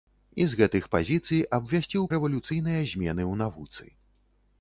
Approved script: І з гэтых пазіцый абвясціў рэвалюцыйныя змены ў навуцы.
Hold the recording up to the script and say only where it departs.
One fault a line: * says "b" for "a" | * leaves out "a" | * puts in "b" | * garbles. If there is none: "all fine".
all fine